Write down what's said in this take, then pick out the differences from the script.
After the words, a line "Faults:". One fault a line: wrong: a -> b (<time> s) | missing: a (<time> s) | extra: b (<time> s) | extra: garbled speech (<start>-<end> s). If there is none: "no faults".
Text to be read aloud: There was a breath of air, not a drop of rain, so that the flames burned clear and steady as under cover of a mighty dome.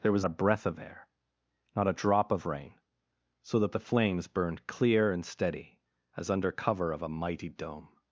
There was a breath of air, not a drop of rain, so that the flames burned clear and steady as under cover of a mighty dome.
Faults:
no faults